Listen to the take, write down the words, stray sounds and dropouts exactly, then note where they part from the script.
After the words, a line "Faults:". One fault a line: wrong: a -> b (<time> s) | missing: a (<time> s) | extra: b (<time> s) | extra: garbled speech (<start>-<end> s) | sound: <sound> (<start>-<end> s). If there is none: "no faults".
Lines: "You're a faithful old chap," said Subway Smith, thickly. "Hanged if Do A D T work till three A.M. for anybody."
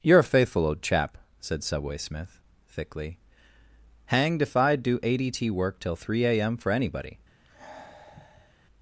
"You're a faithful old chap," said Subway Smith, thickly. "Hanged if I'd do A D T work till three A.M. for anybody."
Faults:
extra: I'd (4.6 s)
sound: sigh (7.4-8.5 s)